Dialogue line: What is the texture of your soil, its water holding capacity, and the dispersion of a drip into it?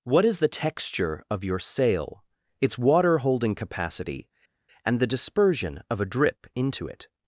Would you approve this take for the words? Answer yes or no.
no